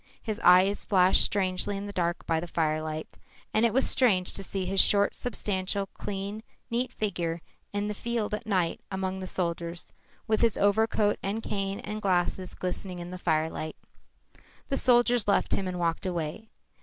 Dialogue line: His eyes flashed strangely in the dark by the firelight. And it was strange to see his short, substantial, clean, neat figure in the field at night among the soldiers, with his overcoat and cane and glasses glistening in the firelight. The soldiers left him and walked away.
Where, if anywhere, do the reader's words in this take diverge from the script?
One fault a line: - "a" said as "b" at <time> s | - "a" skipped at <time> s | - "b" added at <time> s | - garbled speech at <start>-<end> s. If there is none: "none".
none